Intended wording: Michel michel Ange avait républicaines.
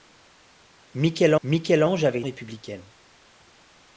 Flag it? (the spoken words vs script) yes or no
no